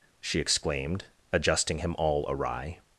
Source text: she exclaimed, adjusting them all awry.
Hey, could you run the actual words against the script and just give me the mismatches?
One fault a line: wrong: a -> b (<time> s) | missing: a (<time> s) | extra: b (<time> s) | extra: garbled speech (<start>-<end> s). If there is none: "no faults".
wrong: them -> him (1.8 s)